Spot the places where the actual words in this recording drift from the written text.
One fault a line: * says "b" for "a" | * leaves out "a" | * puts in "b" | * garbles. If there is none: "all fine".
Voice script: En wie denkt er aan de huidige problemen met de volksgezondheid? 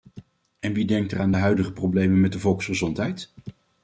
all fine